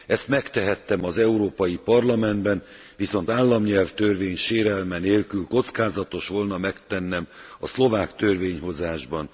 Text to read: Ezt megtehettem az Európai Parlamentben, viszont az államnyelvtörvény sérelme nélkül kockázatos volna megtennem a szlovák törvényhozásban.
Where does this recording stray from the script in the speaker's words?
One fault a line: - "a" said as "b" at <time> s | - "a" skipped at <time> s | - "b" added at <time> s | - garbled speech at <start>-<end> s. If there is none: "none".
- "az" skipped at 3.3 s